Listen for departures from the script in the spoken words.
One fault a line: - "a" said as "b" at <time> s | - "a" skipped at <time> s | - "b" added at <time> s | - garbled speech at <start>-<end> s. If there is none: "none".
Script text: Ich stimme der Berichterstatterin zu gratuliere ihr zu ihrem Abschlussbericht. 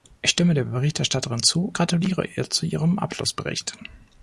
none